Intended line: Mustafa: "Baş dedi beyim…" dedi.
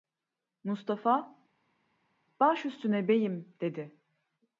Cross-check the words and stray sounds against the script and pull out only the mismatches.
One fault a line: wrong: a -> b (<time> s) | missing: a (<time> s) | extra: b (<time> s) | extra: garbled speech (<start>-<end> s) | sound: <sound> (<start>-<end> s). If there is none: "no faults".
wrong: dedi -> üstüne (2.6 s)